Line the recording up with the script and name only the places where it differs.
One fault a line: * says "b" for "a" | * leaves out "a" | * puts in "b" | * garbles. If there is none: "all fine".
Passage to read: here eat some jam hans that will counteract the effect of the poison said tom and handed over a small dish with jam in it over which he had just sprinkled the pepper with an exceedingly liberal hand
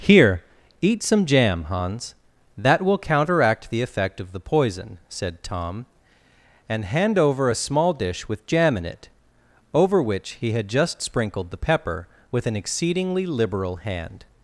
* says "hand" for "handed"